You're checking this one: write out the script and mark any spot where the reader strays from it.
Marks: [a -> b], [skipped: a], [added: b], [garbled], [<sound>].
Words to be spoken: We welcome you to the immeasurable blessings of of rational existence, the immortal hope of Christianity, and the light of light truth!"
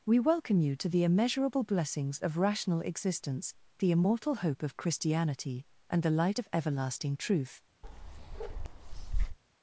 We welcome you to the immeasurable blessings of [skipped: of] rational existence, the immortal hope of Christianity, and the light of [light -> everlasting] truth!" [bark]